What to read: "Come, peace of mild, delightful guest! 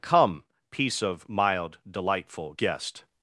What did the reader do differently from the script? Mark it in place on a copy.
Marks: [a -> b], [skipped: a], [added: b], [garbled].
"Come, peace of mild, delightful guest!